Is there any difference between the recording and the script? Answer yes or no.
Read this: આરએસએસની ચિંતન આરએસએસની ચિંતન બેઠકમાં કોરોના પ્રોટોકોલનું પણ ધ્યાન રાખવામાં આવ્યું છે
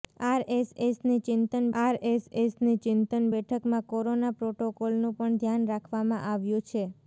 no